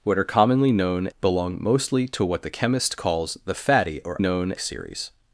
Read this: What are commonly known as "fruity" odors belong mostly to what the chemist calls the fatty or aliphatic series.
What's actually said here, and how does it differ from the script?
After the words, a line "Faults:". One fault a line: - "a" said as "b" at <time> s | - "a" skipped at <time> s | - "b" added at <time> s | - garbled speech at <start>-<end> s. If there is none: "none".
What are commonly known belong mostly to what the chemist calls the fatty or known series.
Faults:
- "as fruity odors" skipped at 1.1 s
- "aliphatic" said as "known" at 4.2 s